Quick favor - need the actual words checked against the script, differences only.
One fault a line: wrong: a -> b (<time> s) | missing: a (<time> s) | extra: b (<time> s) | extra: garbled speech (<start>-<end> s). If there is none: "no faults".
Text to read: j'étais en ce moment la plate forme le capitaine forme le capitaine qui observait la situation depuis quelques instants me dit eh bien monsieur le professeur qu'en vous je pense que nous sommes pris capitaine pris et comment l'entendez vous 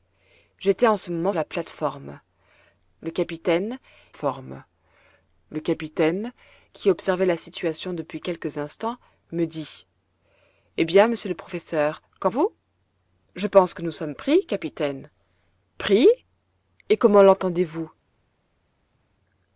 no faults